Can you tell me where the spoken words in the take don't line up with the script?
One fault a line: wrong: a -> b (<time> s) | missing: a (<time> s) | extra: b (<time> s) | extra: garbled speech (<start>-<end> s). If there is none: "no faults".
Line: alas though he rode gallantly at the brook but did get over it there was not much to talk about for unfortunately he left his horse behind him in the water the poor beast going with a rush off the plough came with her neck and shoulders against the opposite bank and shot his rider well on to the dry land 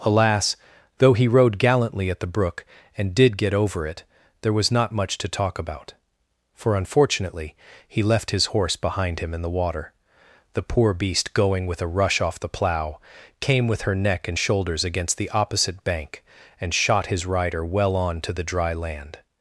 wrong: but -> and (3.0 s)